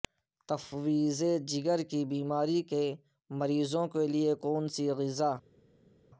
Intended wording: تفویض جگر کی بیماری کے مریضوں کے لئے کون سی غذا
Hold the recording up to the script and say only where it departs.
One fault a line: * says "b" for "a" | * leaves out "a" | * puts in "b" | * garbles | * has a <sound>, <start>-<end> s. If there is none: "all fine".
all fine